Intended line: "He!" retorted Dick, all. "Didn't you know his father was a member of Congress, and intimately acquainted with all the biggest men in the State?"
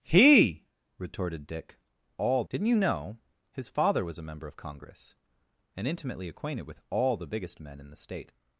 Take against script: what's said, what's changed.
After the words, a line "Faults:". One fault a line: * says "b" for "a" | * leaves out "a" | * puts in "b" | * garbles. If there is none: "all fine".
"He!" retorted Dick, all. "Didn't you know his father was a member of Congress, and intimately acquainted with all the biggest men in the State?"
Faults:
all fine